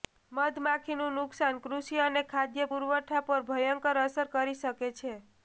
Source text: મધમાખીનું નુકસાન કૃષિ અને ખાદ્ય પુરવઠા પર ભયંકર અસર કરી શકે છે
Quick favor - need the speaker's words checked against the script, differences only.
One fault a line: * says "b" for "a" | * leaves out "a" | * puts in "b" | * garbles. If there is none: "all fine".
all fine